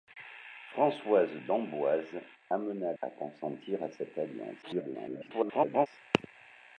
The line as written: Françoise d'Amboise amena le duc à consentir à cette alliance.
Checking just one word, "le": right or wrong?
wrong